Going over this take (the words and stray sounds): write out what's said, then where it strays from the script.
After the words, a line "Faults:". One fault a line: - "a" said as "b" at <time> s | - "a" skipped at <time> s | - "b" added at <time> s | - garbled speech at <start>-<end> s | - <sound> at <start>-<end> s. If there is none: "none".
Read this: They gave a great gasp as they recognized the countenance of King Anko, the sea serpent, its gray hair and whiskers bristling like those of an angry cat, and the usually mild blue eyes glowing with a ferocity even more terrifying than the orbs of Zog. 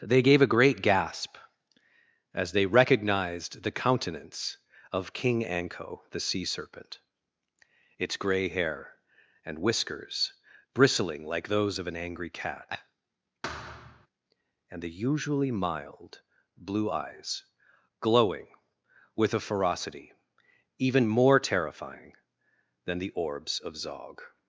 They gave a great gasp as they recognized the countenance of King Anko, the sea serpent, its gray hair and whiskers bristling like those of an angry cat, and the usually mild blue eyes glowing with a ferocity even more terrifying than the orbs of Zog.
Faults:
- thud at 13.4-14.1 s